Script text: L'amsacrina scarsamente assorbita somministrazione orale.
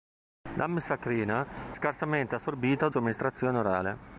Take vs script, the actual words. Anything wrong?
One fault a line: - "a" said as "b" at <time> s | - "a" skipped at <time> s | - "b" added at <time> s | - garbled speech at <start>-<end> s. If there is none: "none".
none